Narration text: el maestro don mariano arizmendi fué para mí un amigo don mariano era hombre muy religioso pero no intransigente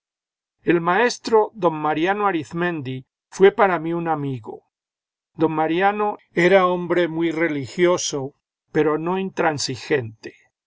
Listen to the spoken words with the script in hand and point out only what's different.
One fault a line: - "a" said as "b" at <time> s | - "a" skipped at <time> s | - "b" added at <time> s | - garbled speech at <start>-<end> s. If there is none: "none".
none